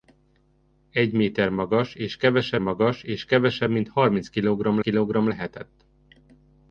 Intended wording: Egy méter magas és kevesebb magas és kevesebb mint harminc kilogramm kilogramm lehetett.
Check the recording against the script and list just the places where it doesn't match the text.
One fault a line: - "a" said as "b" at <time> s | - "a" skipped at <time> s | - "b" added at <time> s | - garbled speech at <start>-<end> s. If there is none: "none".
none